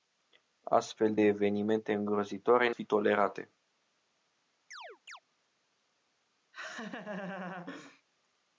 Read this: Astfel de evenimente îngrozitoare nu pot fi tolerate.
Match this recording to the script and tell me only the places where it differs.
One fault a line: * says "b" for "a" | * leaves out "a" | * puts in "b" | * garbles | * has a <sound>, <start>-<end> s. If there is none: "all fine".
* leaves out "de"
* leaves out "nu pot"
* has a chirp, 4.7-5.2 s
* has a laugh, 6.5-8.0 s